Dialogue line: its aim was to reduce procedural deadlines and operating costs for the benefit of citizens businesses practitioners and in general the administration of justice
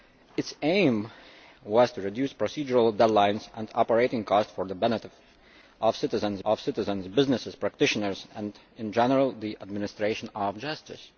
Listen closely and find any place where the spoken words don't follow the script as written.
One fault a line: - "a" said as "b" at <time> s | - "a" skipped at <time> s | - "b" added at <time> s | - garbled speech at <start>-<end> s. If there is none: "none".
- "of citizens" added at 6.4 s